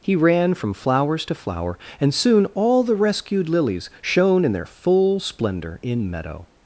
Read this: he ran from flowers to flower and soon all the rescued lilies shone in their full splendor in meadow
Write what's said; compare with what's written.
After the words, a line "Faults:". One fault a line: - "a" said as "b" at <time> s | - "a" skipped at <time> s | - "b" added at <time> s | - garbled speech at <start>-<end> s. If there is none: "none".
he ran from flowers to flower and soon all the rescued lilies shone in their full splendor in meadow
Faults:
none